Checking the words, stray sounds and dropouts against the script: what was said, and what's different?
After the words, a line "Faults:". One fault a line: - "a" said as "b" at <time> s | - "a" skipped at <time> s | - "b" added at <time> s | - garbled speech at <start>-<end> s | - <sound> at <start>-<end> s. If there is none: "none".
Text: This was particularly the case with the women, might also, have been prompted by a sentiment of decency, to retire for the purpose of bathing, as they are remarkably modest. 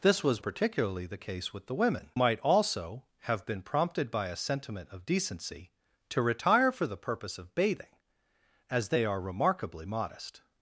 This was particularly the case with the women, might also, have been prompted by a sentiment of decency, to retire for the purpose of bathing, as they are remarkably modest.
Faults:
none